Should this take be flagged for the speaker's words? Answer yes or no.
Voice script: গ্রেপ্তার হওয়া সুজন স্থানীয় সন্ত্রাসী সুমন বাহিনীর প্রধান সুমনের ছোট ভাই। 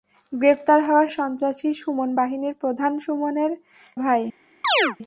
yes